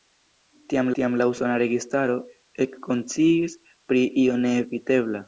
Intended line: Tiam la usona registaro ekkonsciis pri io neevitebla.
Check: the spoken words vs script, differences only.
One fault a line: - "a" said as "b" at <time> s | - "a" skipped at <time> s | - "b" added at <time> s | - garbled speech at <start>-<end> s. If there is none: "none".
- "tiam" added at 1.0 s